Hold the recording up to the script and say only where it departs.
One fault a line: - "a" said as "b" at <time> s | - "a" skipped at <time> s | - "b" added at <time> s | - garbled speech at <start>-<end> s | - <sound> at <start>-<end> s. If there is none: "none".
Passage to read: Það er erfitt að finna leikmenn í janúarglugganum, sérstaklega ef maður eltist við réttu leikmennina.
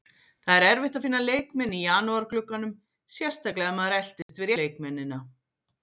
- dropout at 4.2-4.3 s
- "réttu" skipped at 4.5 s